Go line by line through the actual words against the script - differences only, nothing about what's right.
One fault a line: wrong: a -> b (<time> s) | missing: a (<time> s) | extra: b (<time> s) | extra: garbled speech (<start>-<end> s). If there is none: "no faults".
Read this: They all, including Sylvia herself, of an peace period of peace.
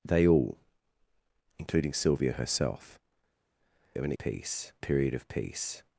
no faults